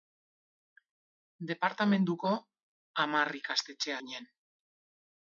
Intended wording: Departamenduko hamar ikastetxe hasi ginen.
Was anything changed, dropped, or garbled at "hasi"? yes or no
yes